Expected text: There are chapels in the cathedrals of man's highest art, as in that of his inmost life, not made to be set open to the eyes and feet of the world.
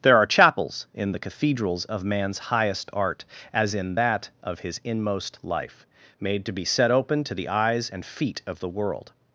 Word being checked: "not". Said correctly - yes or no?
no